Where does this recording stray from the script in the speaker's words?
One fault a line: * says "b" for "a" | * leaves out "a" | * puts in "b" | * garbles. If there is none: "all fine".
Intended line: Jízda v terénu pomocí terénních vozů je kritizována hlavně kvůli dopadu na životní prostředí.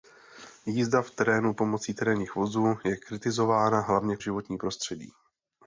* leaves out "kvůli dopadu na"